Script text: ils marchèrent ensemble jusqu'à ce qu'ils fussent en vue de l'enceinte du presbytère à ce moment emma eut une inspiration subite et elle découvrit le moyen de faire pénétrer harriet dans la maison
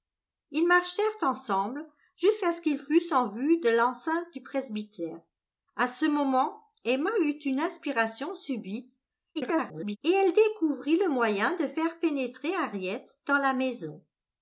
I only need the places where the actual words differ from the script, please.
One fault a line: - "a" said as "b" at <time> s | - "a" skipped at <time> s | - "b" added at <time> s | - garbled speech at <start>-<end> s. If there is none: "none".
- garbled speech at 9.3-10.0 s